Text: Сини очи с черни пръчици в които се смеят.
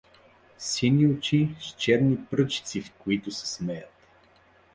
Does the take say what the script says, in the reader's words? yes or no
yes